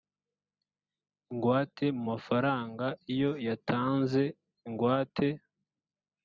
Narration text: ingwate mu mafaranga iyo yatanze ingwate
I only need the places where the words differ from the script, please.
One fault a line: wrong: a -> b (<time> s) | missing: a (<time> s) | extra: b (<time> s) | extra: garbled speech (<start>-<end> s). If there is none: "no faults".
no faults